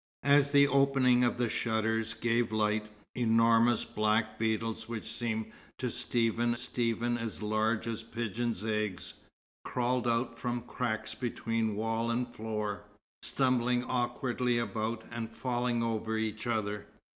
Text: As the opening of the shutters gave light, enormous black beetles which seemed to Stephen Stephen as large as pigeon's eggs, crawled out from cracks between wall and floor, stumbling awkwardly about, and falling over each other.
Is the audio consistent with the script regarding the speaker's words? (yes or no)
yes